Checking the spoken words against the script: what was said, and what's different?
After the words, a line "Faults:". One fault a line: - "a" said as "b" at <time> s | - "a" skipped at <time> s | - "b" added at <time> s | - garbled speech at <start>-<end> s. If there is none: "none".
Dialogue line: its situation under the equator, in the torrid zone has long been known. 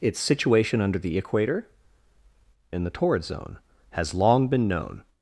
its situation under the equator, in the torrid zone has long been known.
Faults:
none